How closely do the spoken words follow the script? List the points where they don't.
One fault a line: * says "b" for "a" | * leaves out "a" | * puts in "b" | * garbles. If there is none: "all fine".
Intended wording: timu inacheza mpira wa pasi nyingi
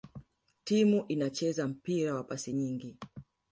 all fine